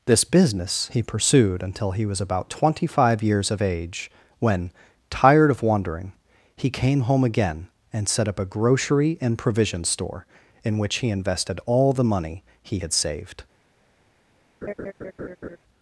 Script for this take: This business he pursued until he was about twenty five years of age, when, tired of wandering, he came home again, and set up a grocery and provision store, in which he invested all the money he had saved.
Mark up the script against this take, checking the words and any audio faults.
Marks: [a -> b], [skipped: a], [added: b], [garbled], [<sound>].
This business he pursued until he was about twenty five years of age, when, tired of wandering, he came home again, and set up a grocery and provision store, in which he invested all the money he had saved. [laugh]